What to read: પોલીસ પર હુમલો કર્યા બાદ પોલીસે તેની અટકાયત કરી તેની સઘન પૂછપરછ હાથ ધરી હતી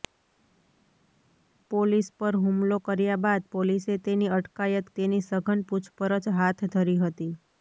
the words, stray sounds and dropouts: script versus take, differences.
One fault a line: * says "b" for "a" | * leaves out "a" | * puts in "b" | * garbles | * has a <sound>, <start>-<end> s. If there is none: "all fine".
* leaves out "કરી"